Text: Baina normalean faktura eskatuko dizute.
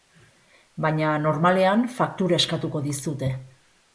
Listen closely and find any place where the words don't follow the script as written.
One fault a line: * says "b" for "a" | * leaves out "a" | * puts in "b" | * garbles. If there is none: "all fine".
all fine